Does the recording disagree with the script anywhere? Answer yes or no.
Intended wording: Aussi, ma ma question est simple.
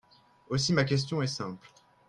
yes